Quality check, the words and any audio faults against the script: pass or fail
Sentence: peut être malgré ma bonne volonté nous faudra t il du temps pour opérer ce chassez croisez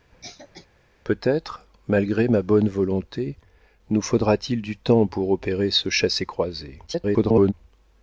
fail